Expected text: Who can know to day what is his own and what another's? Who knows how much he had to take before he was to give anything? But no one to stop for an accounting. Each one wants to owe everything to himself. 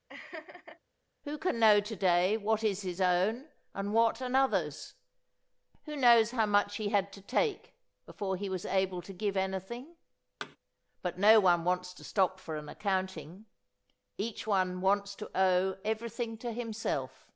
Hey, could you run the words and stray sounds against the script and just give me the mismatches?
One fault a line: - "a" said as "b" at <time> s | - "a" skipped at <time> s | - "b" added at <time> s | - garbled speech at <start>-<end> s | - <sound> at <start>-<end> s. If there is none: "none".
- laugh at 0.1-0.8 s
- "able" added at 8.6 s
- thud at 10.4-10.6 s
- "wants" added at 11.6 s